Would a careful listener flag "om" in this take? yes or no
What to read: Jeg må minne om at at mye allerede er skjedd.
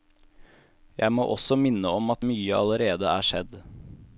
no